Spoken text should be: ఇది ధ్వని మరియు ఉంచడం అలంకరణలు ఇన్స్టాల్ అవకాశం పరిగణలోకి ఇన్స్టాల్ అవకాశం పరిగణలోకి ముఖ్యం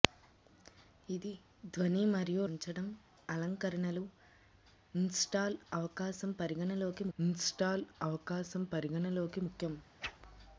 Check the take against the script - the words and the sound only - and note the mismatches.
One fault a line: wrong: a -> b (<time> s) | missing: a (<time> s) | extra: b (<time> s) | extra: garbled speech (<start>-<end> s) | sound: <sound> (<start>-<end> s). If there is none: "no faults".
sound: whoosh (10.0-10.2 s)